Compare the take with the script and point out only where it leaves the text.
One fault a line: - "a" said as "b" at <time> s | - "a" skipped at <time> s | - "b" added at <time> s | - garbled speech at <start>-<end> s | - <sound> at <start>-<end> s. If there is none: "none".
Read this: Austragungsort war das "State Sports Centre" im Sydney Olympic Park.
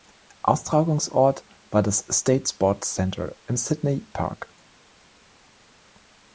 - "Olympic" skipped at 4.1 s